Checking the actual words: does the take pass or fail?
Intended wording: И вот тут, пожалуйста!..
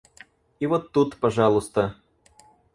pass